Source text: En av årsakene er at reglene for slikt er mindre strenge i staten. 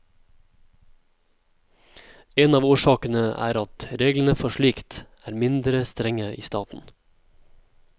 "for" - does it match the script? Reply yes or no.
yes